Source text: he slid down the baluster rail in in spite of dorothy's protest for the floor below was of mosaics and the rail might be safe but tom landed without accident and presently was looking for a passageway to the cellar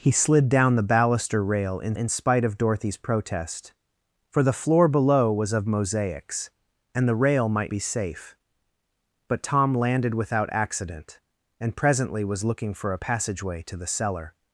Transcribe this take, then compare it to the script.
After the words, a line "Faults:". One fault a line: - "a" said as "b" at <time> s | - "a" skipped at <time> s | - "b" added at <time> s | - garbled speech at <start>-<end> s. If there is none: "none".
he slid down the baluster rail in in spite of dorothy's protest for the floor below was of mosaics and the rail might be safe but tom landed without accident and presently was looking for a passageway to the cellar
Faults:
none